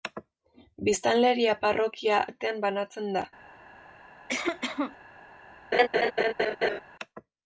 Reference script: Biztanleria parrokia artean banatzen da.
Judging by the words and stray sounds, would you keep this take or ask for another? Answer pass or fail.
fail